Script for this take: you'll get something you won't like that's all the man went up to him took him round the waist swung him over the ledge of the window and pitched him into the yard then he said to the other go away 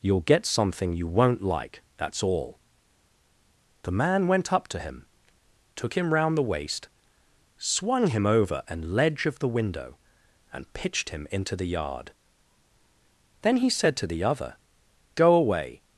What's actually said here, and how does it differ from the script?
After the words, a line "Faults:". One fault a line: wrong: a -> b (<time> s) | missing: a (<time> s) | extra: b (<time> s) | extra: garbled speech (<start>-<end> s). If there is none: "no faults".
you'll get something you won't like that's all the man went up to him took him round the waist swung him over an ledge of the window and pitched him into the yard then he said to the other go away
Faults:
wrong: the -> an (8.7 s)